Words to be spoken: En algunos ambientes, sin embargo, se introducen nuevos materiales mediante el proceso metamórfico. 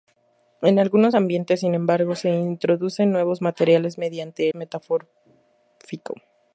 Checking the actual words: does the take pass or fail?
fail